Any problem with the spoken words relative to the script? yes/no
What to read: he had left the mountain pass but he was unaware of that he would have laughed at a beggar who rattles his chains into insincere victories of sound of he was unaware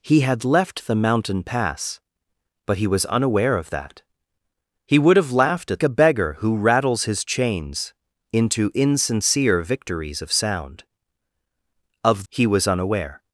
no